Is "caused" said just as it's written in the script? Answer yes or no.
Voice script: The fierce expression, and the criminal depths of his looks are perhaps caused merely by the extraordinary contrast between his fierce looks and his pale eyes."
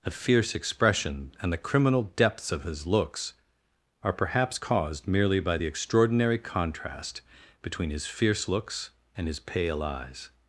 yes